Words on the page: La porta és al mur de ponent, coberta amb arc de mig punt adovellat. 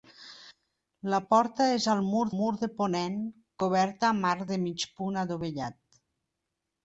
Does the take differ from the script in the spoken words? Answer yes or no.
yes